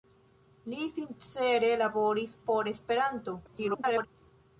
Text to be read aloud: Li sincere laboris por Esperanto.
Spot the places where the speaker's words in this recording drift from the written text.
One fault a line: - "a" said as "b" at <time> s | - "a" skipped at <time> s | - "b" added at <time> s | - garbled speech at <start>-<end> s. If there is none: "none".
- garbled speech at 3.5-4.1 s